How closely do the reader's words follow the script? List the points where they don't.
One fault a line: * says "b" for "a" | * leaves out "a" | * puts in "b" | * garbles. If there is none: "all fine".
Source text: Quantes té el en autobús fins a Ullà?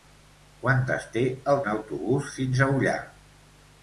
all fine